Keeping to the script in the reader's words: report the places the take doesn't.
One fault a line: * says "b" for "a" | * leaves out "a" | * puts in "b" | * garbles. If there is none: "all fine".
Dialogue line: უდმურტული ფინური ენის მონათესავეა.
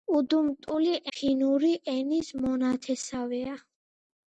all fine